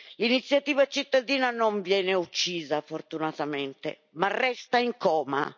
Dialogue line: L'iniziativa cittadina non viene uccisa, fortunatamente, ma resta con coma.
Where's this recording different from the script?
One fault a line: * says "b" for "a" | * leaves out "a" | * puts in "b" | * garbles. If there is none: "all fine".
* says "in" for "con"